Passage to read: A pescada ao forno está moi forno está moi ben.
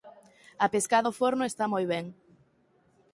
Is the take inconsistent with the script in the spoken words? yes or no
yes